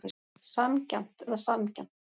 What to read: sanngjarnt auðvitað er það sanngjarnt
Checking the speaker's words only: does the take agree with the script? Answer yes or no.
no